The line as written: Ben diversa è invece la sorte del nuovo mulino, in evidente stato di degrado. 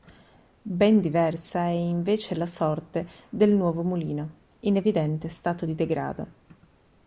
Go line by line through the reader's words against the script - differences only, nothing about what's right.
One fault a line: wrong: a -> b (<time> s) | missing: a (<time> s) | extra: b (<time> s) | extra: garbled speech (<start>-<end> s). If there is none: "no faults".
no faults